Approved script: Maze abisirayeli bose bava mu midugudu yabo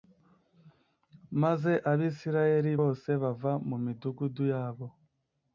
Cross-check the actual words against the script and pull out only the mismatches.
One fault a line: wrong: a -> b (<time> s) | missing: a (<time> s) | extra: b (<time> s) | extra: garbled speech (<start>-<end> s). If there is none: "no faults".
no faults